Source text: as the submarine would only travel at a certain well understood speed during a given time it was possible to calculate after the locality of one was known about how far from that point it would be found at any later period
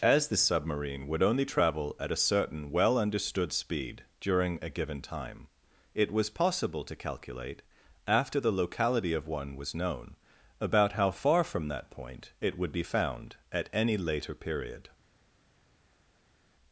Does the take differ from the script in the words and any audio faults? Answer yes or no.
no